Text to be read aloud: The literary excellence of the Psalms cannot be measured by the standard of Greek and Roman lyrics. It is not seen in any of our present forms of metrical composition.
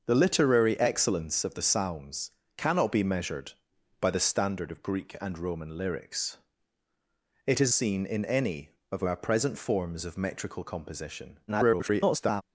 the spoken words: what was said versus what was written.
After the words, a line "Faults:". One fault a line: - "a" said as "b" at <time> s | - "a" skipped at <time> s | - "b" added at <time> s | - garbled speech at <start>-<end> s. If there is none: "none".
The literary excellence of the Psalms cannot be measured by the standard of Greek and Roman lyrics. It is seen in any of our present forms of metrical composition. [garbled]
Faults:
- "not" skipped at 7.7 s
- garbled speech at 11.5-12.4 s